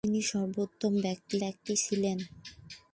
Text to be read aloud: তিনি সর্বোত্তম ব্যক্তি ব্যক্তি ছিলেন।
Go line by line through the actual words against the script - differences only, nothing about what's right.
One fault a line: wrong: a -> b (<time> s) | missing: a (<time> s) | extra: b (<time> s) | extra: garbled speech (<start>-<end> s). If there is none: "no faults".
no faults